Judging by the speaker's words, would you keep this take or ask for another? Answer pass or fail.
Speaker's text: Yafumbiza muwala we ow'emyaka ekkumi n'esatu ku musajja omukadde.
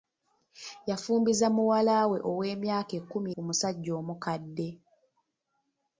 fail